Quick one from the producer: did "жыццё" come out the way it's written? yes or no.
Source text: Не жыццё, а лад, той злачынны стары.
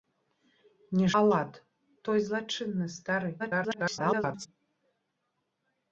no